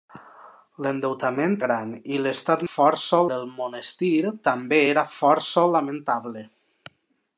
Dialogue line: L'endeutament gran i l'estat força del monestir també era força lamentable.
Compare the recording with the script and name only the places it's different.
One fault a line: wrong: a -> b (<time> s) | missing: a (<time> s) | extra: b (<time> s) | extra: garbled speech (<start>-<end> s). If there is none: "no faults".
no faults